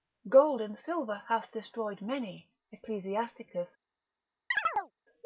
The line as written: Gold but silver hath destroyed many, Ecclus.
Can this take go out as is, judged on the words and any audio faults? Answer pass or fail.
fail